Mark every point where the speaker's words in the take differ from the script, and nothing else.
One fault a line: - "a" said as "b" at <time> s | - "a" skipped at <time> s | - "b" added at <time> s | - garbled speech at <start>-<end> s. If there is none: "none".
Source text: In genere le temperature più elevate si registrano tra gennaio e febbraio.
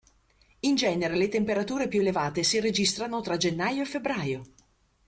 none